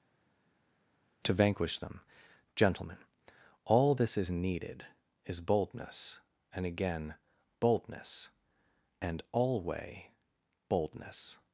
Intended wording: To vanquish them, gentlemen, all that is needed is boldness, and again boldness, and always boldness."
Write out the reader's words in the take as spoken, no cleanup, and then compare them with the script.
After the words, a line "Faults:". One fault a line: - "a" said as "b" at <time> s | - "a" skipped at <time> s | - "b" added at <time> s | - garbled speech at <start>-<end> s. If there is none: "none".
To vanquish them, gentlemen, all this is needed is boldness, and again boldness, and alway boldness."
Faults:
- "that" said as "this" at 3.9 s
- "always" said as "alway" at 9.3 s